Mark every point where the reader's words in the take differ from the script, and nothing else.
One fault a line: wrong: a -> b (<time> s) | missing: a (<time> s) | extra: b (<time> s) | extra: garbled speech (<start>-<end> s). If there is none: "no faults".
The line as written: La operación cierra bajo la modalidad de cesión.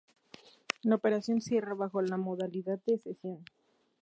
no faults